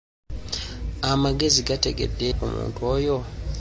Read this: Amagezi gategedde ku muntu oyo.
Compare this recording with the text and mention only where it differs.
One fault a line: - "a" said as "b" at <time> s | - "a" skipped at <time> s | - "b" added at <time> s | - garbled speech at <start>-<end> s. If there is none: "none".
none